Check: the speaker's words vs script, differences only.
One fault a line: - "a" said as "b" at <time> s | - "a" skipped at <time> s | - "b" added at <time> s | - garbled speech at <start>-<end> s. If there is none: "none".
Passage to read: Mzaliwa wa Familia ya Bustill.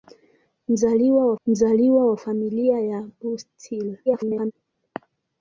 - "mzaliwa wa" added at 1.5 s
- garbled speech at 4.1-4.5 s